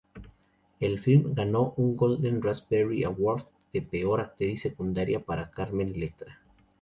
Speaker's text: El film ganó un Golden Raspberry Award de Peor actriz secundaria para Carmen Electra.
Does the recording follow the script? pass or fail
pass